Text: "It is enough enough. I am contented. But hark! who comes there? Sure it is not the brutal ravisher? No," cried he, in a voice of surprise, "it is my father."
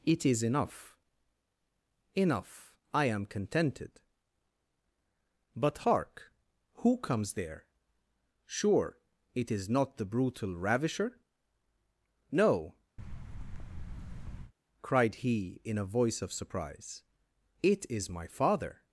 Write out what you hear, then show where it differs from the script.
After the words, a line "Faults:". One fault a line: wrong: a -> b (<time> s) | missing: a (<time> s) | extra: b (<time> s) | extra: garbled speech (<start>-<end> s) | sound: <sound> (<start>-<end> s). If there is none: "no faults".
"It is enough enough. I am contented. But hark! who comes there? Sure it is not the brutal ravisher? No," cried he, in a voice of surprise, "it is my father."
Faults:
sound: thud (13.0-14.5 s)